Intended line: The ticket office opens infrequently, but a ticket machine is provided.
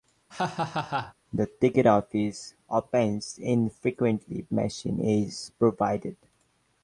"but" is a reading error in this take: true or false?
true